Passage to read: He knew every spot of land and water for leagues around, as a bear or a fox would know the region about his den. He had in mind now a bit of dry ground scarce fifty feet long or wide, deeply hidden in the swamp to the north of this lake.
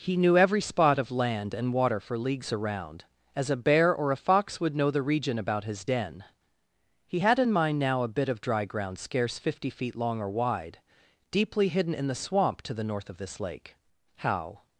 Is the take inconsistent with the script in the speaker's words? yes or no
yes